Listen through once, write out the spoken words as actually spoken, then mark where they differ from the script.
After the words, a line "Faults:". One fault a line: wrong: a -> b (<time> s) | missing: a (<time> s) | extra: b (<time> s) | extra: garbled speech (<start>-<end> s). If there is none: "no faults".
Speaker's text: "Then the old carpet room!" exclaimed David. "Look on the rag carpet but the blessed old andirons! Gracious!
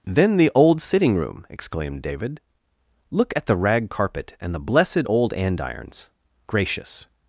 "Then the old sitting room!" exclaimed David. "Look at the rag carpet and the blessed old andirons! Gracious!
Faults:
wrong: carpet -> sitting (0.8 s)
wrong: on -> at (3.4 s)
wrong: but -> and (4.4 s)